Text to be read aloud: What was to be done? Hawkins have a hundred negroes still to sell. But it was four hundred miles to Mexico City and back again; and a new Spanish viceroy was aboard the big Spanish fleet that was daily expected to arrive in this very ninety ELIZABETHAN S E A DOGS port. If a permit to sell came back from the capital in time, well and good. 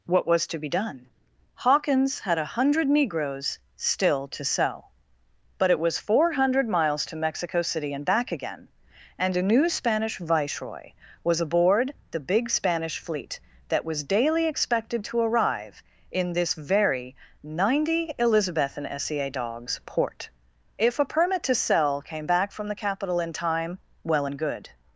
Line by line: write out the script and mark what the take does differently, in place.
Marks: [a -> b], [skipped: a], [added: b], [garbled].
What was to be done? Hawkins [have -> had] a hundred negroes still to sell. But it was four hundred miles to Mexico City and back again; and a new Spanish viceroy was aboard the big Spanish fleet that was daily expected to arrive in this very ninety ELIZABETHAN S E A DOGS port. If a permit to sell came back from the capital in time, well and good.